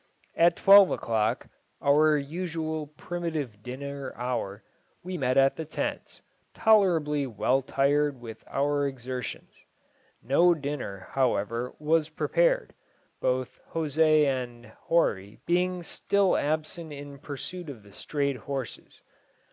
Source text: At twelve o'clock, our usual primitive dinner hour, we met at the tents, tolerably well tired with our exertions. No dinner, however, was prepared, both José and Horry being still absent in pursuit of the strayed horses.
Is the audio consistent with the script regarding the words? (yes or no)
yes